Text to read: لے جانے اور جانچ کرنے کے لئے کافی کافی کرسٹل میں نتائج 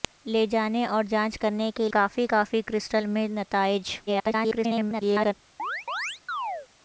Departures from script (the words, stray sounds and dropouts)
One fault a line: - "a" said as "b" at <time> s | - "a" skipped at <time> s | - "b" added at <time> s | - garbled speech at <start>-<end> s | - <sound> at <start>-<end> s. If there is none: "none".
- "لئے" skipped at 1.9 s
- garbled speech at 4.1-5.3 s
- chirp at 5.6-6.7 s